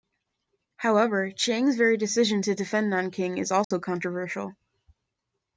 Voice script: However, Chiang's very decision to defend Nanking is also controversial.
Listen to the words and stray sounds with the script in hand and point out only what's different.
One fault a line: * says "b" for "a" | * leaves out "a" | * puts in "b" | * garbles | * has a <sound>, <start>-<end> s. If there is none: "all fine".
* has a dropout, 3.6-3.7 s